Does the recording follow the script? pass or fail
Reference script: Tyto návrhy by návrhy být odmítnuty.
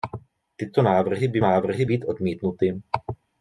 pass